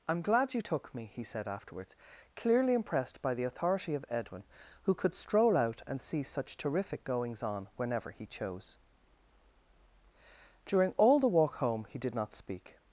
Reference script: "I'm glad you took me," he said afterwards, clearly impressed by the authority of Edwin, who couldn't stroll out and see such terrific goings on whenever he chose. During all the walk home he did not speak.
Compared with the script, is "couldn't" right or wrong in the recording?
wrong